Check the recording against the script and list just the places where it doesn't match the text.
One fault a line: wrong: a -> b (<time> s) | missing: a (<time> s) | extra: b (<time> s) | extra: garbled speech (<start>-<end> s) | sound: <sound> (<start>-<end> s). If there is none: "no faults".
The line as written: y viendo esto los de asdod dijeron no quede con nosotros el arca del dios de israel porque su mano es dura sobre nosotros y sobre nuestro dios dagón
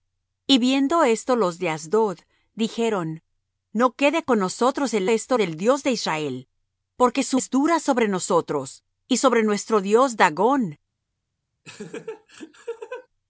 wrong: arca -> esto (5.1 s)
missing: mano (7.4 s)
sound: laugh (11.6-13.1 s)